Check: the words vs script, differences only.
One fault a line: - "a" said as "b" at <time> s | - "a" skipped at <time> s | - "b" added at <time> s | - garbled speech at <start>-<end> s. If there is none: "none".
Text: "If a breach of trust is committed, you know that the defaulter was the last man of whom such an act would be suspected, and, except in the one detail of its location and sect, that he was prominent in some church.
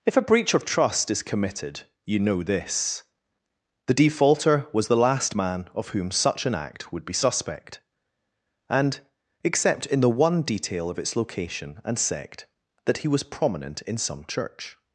- "that" said as "this" at 2.4 s
- "suspected" said as "suspect" at 7.1 s